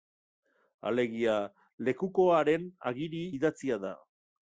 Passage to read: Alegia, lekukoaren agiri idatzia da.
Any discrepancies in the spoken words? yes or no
no